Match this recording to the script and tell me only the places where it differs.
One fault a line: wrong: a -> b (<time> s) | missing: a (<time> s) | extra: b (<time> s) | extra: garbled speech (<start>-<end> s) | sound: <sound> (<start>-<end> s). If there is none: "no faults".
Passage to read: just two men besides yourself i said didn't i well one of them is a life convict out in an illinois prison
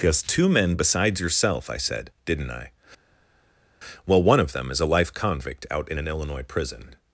no faults